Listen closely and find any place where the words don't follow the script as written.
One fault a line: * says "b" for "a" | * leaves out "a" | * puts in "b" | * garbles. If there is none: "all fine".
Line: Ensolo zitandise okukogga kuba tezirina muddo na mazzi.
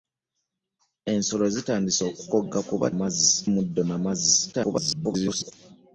* says "mazzi" for "tezirina"
* garbles